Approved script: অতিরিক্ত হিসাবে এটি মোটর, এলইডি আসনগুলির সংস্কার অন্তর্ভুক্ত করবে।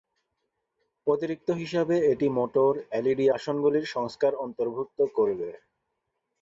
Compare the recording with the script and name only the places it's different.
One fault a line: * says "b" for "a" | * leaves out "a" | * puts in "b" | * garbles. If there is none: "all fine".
all fine